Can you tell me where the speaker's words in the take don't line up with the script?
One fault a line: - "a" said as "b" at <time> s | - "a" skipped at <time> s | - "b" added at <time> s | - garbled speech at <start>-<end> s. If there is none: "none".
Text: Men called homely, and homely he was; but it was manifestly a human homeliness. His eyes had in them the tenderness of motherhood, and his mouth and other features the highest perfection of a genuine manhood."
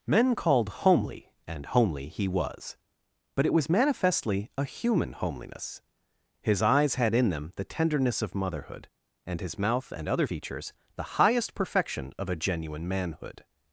none